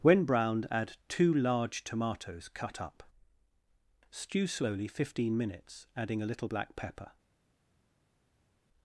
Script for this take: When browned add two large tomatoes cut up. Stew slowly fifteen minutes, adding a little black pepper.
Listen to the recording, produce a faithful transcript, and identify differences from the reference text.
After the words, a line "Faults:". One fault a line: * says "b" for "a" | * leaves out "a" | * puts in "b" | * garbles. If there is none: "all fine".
When browned add two large tomatoes cut up. Stew slowly fifteen minutes, adding a little black pepper.
Faults:
all fine